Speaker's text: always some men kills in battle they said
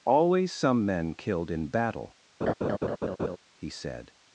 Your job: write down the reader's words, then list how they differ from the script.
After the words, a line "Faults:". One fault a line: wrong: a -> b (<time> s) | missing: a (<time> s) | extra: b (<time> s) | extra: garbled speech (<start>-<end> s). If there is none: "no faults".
always some men killed in battle he said
Faults:
wrong: kills -> killed (1.1 s)
wrong: they -> he (3.5 s)